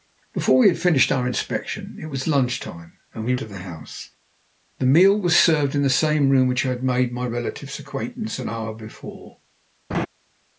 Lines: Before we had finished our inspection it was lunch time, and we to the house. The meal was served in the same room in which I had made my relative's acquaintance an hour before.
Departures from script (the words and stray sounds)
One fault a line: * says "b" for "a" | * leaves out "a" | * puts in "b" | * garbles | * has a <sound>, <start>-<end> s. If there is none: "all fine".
* has a laugh, 9.9-10.1 s